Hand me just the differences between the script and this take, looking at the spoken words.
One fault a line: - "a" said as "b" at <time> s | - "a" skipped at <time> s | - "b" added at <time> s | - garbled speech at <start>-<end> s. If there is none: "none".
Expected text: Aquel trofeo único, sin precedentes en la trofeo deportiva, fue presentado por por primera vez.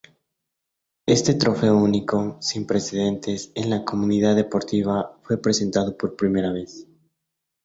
- "Aquel" said as "Este" at 1.1 s
- "trofeo" said as "comunidad" at 3.8 s
- "por" skipped at 6.2 s